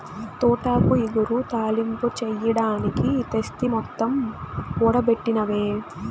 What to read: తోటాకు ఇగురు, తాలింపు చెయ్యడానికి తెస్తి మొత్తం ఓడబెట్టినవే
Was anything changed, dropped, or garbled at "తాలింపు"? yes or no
no